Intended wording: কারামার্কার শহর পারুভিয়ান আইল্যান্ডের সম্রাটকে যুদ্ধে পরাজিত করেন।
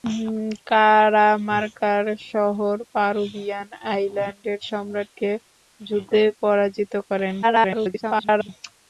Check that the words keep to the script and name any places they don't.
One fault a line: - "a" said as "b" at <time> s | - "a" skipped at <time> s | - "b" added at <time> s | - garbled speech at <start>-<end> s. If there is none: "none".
- garbled speech at 7.4-8.5 s